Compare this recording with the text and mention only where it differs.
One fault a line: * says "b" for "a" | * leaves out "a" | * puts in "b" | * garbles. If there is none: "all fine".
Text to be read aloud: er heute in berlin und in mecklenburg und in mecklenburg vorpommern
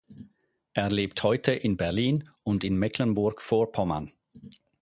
* puts in "lebt"
* leaves out "und in mecklenburg"